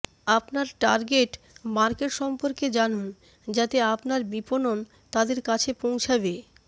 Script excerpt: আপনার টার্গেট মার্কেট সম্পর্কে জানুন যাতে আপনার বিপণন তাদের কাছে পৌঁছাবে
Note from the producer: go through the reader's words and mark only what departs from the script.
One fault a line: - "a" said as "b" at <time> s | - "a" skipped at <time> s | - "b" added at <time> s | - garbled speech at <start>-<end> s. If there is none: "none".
none